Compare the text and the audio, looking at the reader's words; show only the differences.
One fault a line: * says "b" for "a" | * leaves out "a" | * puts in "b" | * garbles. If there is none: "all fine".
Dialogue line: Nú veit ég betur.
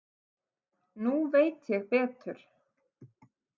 all fine